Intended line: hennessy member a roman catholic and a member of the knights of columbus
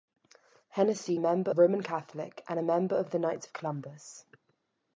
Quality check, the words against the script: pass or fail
pass